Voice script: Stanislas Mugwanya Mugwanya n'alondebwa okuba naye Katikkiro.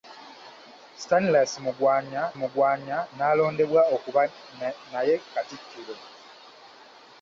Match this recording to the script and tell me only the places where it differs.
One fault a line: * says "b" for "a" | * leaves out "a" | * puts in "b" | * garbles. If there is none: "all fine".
all fine